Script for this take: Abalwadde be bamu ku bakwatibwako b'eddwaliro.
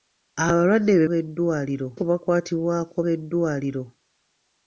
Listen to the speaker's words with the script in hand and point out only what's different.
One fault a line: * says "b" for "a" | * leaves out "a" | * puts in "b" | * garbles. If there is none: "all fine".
* says "b'eddwaliro" for "bamu"